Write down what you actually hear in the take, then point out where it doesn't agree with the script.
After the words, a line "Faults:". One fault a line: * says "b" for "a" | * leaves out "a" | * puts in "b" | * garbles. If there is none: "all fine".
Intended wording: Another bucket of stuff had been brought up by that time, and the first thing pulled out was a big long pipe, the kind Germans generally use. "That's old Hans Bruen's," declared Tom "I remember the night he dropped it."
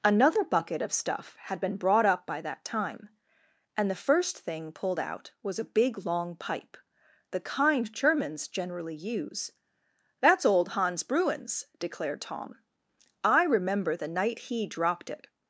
Another bucket of stuff had been brought up by that time, and the first thing pulled out was a big long pipe, the kind Germans generally use. "That's old Hans Bruen's," declared Tom "I remember the night he dropped it."
Faults:
all fine